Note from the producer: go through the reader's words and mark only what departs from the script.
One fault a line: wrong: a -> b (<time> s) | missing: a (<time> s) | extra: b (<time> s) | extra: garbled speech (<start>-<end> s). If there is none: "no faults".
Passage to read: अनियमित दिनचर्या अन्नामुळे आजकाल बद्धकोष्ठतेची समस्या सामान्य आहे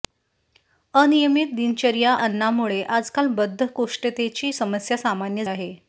no faults